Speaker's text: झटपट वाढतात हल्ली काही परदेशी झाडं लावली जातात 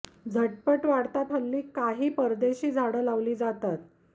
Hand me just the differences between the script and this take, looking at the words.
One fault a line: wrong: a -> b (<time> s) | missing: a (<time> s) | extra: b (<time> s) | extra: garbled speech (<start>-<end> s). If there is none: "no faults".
no faults